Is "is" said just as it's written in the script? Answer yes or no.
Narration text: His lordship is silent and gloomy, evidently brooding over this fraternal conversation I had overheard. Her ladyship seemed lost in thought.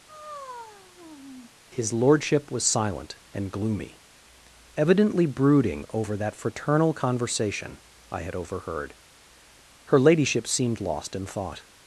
no